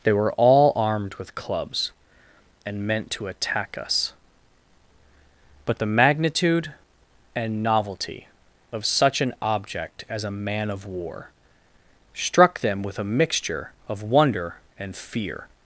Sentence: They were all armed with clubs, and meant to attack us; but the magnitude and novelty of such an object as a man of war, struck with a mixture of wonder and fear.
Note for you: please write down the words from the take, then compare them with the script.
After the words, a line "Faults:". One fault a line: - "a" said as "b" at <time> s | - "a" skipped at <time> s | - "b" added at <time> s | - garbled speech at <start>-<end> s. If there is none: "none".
They were all armed with clubs, and meant to attack us; but the magnitude and novelty of such an object as a man of war, struck them with a mixture of wonder and fear.
Faults:
- "them" added at 12.6 s